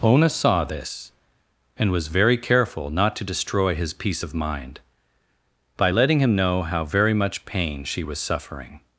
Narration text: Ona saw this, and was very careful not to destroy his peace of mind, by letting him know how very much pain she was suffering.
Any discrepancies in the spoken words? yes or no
no